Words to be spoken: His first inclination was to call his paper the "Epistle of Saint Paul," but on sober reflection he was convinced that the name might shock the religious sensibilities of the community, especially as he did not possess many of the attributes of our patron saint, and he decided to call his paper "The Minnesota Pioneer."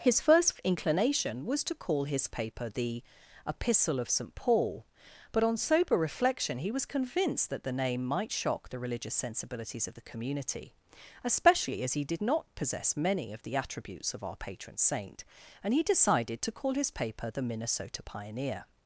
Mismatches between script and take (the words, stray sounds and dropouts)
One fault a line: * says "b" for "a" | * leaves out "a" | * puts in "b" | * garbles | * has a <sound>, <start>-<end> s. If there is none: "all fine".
all fine